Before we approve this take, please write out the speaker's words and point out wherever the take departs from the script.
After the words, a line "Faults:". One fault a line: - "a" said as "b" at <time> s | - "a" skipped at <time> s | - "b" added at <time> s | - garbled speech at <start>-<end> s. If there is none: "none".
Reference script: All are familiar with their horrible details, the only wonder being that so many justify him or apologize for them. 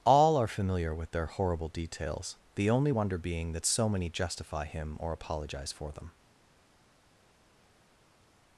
All are familiar with their horrible details, the only wonder being that so many justify him or apologize for them.
Faults:
none